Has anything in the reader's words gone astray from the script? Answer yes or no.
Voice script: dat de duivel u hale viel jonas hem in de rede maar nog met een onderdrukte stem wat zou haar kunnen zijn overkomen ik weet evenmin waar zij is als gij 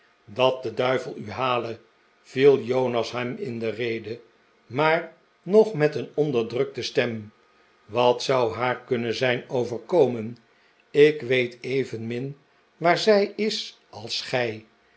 no